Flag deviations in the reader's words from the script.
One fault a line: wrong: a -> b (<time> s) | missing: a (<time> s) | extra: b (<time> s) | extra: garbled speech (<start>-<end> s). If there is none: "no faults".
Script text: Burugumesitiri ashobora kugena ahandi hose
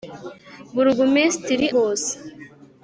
missing: ashobora kugena ahandi (1.7 s)